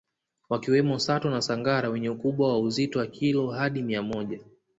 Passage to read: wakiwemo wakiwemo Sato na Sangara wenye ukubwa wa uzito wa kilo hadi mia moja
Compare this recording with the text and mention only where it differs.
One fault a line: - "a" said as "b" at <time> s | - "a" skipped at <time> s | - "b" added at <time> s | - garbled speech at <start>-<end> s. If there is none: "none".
- "wakiwemo" skipped at 1.0 s